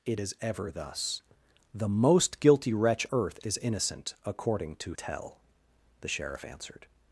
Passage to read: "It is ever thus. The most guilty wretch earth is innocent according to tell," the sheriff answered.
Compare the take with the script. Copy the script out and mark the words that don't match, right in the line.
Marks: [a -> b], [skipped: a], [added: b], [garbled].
"It is ever thus. The most guilty wretch earth is innocent according to tell," the sheriff answered.